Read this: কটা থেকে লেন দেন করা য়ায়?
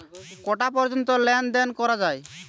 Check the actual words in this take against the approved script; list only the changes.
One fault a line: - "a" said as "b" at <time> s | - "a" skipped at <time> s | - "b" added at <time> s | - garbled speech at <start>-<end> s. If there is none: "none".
- "থেকে" said as "পর্যন্ত" at 0.8 s